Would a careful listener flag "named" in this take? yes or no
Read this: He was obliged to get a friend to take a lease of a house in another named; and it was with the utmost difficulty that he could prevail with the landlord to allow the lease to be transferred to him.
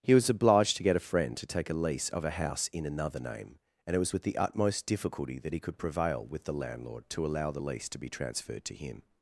yes